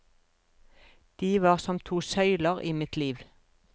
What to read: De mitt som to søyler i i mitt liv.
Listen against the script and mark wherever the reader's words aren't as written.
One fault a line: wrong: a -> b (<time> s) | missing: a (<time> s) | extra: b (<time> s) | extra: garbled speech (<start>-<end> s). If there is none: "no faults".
wrong: mitt -> var (1.4 s)
missing: i (2.7 s)